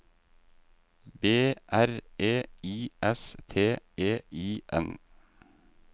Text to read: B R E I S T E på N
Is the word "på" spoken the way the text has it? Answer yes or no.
no